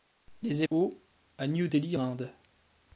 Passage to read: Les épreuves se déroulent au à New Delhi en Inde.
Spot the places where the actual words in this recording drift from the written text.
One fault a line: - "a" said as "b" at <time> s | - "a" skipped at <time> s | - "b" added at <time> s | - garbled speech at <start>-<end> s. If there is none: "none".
- "épreuves se déroulent" skipped at 0.6 s
- "en" skipped at 2.0 s